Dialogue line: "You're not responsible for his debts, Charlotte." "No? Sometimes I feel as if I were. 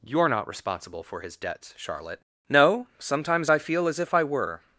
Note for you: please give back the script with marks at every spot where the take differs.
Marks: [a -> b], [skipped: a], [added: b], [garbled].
"You're not responsible for his debts, Charlotte." "No? Sometimes I feel as if I were.